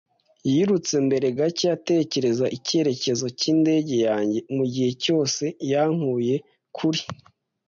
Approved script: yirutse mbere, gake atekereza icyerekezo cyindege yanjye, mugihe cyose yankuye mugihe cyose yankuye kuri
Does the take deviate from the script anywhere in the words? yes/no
yes